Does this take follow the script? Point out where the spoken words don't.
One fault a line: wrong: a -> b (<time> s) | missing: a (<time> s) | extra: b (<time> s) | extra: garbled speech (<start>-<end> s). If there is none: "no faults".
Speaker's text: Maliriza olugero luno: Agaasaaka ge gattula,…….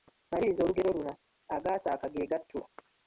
no faults